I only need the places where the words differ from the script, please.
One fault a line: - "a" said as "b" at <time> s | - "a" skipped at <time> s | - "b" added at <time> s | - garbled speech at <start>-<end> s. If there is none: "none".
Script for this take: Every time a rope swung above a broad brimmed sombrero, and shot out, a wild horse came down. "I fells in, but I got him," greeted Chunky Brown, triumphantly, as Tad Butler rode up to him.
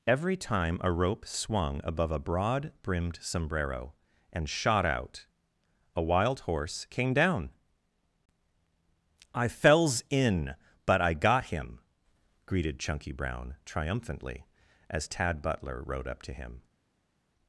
none